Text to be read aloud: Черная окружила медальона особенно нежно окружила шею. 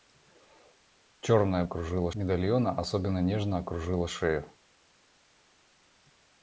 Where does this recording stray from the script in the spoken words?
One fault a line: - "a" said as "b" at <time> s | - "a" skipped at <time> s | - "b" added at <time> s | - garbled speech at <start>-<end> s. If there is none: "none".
none